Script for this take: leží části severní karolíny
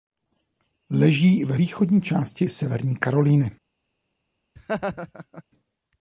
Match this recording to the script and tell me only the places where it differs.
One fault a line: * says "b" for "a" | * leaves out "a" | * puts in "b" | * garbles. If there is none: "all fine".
* puts in "ve východní"